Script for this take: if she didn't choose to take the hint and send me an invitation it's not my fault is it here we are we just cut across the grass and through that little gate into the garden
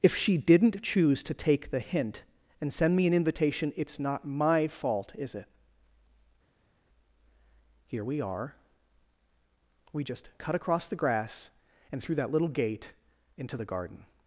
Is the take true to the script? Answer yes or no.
yes